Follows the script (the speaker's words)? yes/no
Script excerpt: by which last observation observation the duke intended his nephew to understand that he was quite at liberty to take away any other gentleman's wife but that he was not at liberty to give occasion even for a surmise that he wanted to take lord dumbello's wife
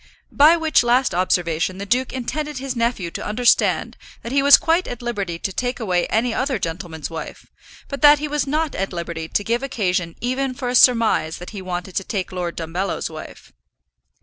no